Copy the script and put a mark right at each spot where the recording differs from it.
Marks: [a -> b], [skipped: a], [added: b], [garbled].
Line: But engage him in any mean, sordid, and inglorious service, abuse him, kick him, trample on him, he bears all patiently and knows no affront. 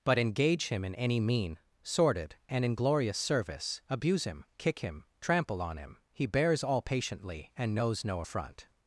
But engage him in any mean, sordid, and inglorious service, abuse him, kick him, trample on him, he bears all patiently and knows no affront.